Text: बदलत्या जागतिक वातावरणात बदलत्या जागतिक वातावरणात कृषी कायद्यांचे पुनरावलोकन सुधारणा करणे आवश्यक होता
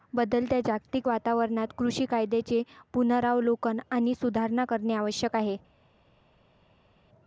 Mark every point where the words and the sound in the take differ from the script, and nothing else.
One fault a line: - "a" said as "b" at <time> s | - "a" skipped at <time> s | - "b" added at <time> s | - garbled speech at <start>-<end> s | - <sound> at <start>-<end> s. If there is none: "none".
- "बदलत्या जागतिक वातावरणात" skipped at 1.7 s
- "आणि" added at 3.9 s
- "होता" said as "आहे" at 5.3 s